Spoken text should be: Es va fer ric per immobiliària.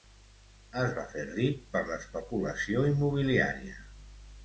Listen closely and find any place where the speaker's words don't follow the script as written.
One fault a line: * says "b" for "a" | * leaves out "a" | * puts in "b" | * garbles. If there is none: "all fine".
* puts in "l'especulació"